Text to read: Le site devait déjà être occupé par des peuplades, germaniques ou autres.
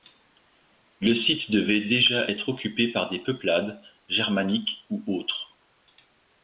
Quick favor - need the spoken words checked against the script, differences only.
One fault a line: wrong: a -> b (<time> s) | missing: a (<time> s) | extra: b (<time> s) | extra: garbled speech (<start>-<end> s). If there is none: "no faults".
no faults